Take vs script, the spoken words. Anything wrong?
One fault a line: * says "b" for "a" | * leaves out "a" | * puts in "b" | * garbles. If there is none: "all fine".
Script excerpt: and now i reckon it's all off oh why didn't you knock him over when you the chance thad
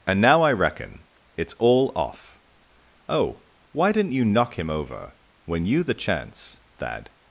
all fine